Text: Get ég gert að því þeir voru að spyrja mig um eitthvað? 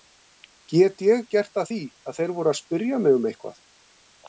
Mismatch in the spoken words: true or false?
true